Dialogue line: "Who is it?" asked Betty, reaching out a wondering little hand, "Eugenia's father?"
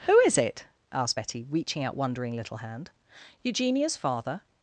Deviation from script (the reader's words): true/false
true